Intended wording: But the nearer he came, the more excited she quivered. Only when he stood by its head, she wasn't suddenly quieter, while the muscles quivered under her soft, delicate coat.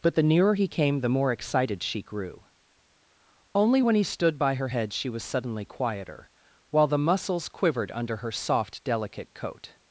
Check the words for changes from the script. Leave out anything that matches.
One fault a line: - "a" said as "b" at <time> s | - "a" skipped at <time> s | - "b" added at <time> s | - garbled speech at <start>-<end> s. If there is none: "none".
- "quivered" said as "grew" at 2.0 s
- "its" said as "her" at 4.5 s
- "wasn't" said as "was" at 5.1 s